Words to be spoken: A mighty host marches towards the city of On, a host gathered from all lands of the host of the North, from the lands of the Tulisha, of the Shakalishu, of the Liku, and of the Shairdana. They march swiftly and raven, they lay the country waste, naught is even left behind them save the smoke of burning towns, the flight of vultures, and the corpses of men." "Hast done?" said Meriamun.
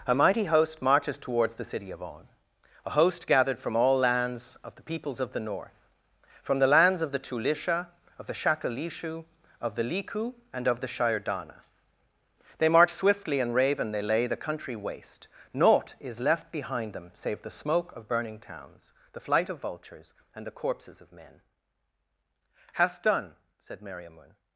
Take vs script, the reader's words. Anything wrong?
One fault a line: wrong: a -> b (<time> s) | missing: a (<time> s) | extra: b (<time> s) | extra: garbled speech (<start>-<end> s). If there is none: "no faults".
wrong: host -> peoples (4.8 s)
missing: even (16.2 s)